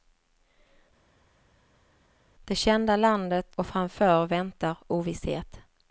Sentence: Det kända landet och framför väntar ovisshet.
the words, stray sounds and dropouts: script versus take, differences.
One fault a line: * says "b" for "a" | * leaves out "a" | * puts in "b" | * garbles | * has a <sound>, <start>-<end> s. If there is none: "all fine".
all fine